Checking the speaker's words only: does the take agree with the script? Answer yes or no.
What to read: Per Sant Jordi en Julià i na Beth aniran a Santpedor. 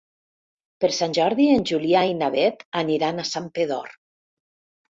yes